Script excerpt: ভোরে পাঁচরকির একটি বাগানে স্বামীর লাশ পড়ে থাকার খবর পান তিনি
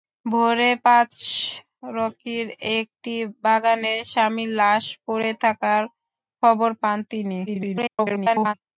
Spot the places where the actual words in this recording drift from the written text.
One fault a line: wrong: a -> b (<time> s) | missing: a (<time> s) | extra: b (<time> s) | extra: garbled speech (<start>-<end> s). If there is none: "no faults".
extra: garbled speech (7.5-8.5 s)